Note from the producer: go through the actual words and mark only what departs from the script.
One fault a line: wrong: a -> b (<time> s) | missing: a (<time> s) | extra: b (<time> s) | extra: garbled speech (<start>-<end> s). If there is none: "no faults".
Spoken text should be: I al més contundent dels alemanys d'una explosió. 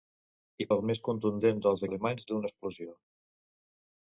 no faults